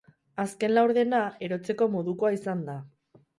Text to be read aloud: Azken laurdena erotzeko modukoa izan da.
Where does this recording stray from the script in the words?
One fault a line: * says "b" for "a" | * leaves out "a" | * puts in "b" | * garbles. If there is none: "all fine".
all fine